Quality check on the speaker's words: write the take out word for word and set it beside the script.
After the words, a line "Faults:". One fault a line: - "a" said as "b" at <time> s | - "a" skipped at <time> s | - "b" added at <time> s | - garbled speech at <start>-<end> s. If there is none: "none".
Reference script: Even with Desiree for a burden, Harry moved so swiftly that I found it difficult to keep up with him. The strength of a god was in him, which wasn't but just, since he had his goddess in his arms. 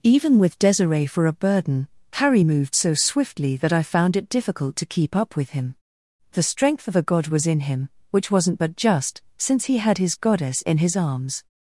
Even with Desiree for a burden, Harry moved so swiftly that I found it difficult to keep up with him. The strength of a god was in him, which wasn't but just, since he had his goddess in his arms.
Faults:
none